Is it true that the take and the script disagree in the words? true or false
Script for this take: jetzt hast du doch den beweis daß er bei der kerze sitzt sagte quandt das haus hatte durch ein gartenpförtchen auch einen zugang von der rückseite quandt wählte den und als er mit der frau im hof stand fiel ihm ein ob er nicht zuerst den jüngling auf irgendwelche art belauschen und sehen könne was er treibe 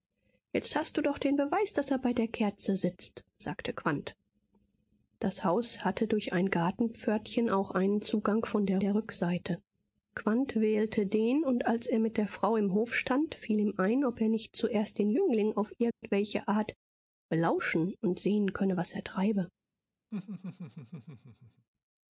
true